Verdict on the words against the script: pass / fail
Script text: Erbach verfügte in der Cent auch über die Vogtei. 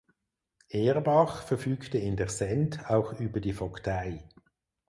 pass